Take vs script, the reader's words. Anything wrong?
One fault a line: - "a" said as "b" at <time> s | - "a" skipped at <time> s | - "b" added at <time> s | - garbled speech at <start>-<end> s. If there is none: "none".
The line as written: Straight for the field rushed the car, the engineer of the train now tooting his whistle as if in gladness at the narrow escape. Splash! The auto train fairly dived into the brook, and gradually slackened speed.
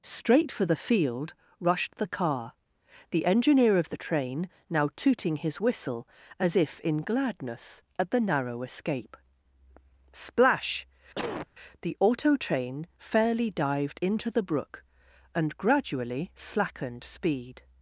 none